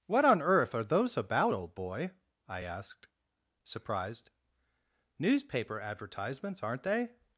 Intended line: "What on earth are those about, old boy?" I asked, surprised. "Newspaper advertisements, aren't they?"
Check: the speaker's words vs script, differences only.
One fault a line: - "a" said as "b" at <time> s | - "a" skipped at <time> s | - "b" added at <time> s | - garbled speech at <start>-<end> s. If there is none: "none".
none